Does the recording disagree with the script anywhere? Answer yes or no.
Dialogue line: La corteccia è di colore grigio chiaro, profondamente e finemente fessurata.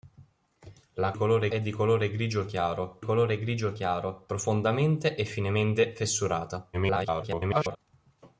yes